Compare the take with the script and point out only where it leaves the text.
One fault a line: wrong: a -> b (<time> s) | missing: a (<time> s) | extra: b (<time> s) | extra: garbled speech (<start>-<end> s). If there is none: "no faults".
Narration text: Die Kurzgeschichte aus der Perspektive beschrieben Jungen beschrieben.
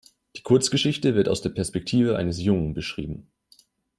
extra: wird (1.1 s)
wrong: beschrieben -> eines (2.1 s)